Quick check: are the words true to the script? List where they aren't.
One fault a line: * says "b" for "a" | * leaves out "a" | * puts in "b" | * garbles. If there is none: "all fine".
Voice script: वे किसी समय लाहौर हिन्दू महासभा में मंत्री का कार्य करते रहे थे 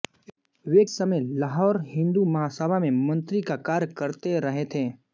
* leaves out "किसी"